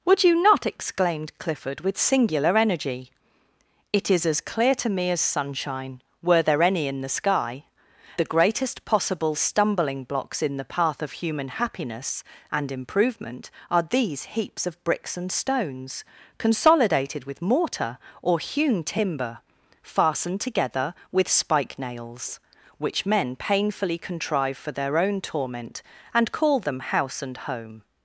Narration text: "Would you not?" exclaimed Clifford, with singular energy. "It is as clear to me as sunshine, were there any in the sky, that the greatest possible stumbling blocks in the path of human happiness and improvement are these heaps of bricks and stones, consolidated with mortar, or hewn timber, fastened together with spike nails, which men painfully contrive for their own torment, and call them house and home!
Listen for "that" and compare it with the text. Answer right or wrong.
wrong